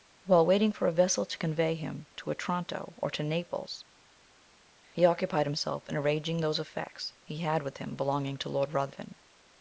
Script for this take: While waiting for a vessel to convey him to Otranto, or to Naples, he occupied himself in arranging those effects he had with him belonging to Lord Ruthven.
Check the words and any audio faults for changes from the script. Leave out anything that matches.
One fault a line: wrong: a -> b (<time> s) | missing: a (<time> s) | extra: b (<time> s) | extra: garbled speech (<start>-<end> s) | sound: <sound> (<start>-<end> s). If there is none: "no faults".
no faults